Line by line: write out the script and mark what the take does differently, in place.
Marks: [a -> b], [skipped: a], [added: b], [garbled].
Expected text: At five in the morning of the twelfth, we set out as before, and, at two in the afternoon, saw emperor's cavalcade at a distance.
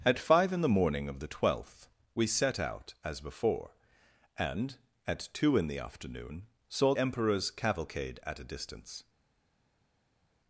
At five in the morning of the twelfth, we set out as before, and, at two in the afternoon, saw emperor's cavalcade at a distance.